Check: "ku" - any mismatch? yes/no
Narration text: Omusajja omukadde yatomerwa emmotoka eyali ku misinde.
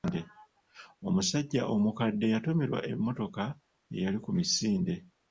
no